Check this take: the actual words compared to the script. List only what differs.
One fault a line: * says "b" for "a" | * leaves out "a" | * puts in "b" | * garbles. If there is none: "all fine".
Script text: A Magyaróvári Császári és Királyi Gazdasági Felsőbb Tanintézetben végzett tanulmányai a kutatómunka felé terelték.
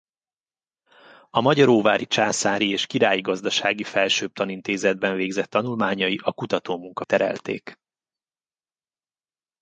* leaves out "felé"